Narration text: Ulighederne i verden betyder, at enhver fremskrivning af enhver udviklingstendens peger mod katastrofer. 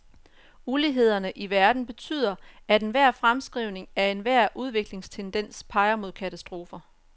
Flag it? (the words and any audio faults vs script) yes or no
no